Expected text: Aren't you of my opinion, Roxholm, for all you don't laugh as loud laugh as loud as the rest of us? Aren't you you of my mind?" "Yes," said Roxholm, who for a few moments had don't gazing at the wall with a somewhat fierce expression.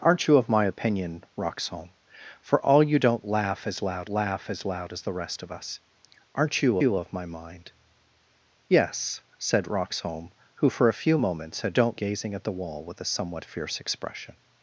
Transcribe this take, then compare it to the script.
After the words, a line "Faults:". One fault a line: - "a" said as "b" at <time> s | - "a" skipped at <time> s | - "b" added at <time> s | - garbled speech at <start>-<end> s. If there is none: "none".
Aren't you of my opinion, Roxholm, for all you don't laugh as loud laugh as loud as the rest of us? Aren't you you of my mind?" "Yes," said Roxholm, who for a few moments had don't gazing at the wall with a somewhat fierce expression.
Faults:
none